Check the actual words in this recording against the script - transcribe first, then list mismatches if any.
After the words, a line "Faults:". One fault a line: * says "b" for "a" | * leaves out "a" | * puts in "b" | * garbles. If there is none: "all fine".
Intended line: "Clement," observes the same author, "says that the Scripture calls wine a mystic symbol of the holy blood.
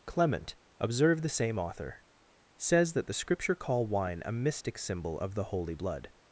"Clement," observe the same author, "says that the Scripture call wine a mystic symbol of the holy blood.
Faults:
* says "observe" for "observes"
* says "call" for "calls"